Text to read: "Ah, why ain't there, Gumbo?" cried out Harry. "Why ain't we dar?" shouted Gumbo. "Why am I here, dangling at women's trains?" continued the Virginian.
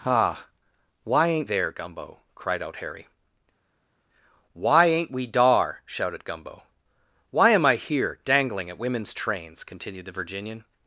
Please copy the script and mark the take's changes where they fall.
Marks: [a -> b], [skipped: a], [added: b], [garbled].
"Ah, why ain't there, Gumbo?" cried out Harry. "Why ain't we dar?" shouted Gumbo. "Why am I here, dangling at women's trains?" continued the Virginian.